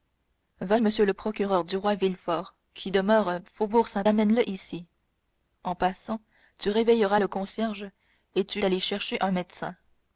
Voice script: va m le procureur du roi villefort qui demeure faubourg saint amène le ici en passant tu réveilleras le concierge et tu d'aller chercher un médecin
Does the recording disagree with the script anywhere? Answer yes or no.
no